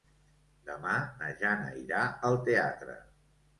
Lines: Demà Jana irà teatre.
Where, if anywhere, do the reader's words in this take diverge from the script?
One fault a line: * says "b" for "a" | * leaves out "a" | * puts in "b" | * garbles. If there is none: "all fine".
* puts in "na"
* puts in "al"